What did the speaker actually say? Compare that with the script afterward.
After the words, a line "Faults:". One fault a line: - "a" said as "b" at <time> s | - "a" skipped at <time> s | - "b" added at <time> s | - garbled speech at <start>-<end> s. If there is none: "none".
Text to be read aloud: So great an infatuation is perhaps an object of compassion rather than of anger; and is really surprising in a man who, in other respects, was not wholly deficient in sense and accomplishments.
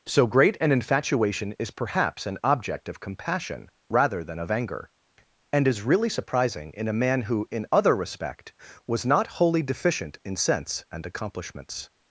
So great an infatuation is perhaps an object of compassion rather than of anger; and is really surprising in a man who, in other respect, was not wholly deficient in sense and accomplishments.
Faults:
- "respects" said as "respect" at 8.0 s